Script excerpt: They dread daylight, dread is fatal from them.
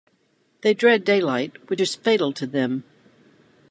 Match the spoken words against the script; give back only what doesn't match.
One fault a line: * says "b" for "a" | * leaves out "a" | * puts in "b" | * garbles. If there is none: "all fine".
* says "which" for "dread"
* says "to" for "from"